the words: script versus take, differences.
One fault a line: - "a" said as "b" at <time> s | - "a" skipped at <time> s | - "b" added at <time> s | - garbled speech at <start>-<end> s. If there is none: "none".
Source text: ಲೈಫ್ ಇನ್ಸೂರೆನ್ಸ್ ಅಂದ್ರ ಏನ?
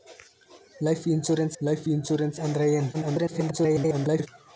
- "ಲೈಫ್ ಇನ್ಸೂರೆನ್ಸ್" added at 1.6 s
- garbled speech at 2.9-4.3 s